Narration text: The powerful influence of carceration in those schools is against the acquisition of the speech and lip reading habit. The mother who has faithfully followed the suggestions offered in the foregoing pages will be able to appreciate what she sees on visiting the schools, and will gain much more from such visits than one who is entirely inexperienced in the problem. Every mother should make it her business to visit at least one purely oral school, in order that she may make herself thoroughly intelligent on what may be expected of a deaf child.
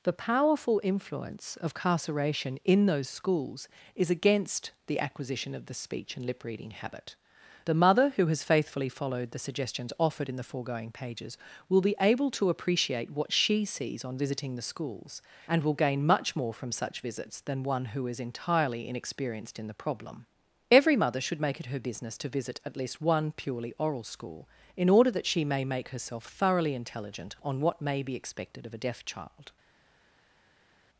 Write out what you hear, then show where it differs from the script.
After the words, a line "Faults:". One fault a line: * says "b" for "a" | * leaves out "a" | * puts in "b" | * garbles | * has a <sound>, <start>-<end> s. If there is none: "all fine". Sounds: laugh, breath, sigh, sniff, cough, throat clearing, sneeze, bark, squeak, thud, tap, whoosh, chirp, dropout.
The powerful influence of carceration in those schools is against the acquisition of the speech and lip reading habit. The mother who has faithfully followed the suggestions offered in the foregoing pages will be able to appreciate what she sees on visiting the schools, and will gain much more from such visits than one who is entirely inexperienced in the problem. Every mother should make it her business to visit at least one purely oral school, in order that she may make herself thoroughly intelligent on what may be expected of a deaf child.
Faults:
all fine